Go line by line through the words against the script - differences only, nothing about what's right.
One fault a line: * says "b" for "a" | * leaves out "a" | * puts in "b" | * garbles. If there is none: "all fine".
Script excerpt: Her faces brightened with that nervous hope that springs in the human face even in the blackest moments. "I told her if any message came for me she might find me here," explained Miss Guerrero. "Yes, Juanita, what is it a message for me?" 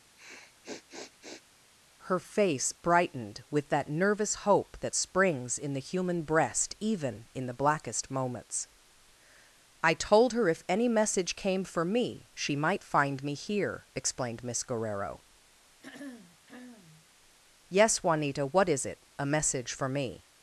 * says "face" for "faces"
* says "breast" for "face"